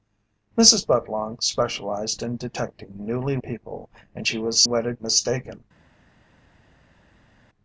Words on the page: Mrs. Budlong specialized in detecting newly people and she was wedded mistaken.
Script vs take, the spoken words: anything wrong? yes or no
no